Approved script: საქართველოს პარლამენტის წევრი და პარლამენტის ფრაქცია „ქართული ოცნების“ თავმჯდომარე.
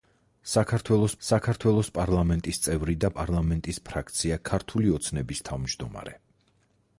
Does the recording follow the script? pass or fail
fail